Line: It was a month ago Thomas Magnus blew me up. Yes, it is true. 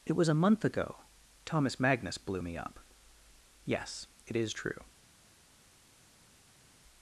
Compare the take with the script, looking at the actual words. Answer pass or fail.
pass